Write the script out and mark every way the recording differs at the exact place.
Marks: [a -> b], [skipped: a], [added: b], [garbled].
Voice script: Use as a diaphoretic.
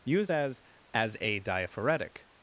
Use as [added: as] a diaphoretic.